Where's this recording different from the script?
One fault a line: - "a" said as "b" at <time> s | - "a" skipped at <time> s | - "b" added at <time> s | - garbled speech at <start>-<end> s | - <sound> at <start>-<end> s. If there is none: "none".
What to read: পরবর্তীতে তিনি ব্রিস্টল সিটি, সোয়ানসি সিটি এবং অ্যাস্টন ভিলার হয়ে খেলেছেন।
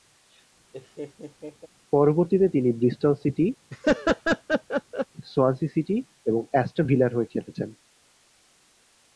- laugh at 0.7-1.7 s
- laugh at 3.7-5.1 s